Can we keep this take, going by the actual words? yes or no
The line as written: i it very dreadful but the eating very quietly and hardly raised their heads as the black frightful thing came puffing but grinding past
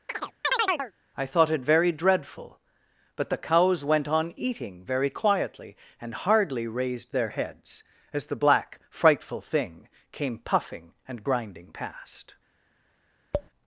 no